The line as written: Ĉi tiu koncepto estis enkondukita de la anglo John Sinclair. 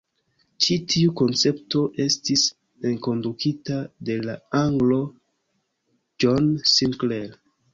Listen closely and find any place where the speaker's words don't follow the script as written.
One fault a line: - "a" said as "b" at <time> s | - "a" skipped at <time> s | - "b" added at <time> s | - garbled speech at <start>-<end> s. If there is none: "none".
none